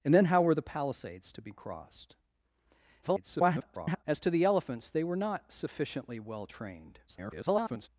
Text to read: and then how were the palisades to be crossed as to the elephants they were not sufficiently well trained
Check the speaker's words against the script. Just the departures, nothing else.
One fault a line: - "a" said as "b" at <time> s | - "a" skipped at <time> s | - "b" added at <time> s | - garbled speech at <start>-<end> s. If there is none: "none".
- garbled speech at 3.0-4.0 s
- garbled speech at 7.1-7.9 s